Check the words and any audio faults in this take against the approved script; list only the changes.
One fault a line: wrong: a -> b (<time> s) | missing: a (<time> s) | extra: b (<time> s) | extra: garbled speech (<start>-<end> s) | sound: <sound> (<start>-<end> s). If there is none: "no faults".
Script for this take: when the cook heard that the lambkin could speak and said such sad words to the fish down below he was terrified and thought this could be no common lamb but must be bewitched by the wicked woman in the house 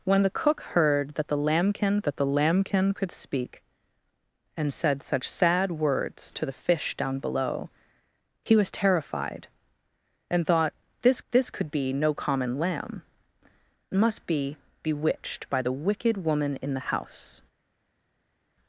extra: that the lambkin (2.0 s)
extra: this (11.3 s)
missing: but (13.0 s)